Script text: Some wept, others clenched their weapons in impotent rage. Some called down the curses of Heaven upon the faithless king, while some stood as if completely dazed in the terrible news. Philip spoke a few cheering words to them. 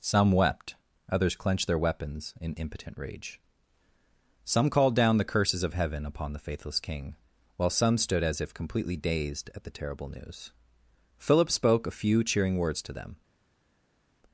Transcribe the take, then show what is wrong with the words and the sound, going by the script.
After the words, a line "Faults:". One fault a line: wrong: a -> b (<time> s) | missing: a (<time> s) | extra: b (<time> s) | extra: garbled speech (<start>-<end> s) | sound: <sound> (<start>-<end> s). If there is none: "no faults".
Some wept, others clenched their weapons in impotent rage. Some called down the curses of Heaven upon the faithless king, while some stood as if completely dazed at the terrible news. Philip spoke a few cheering words to them.
Faults:
wrong: in -> at (9.5 s)